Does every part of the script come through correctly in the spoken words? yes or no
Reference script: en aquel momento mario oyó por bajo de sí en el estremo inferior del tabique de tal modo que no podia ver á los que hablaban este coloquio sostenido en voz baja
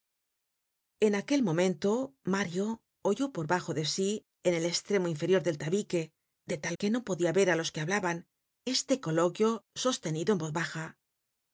no